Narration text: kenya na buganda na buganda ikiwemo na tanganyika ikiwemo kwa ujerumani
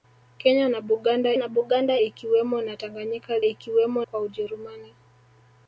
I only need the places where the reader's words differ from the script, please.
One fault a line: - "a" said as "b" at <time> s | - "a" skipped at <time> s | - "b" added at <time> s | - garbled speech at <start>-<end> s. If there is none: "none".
none